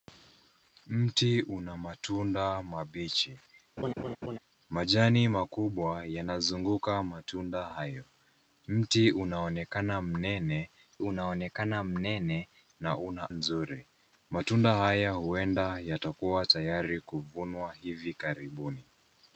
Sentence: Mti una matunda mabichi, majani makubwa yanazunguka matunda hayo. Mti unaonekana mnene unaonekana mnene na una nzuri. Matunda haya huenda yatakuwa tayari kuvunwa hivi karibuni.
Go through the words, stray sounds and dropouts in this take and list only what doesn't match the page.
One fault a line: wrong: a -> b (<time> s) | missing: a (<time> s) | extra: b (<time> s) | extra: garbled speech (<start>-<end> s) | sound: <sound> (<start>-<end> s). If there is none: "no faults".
sound: laugh (3.8-4.4 s)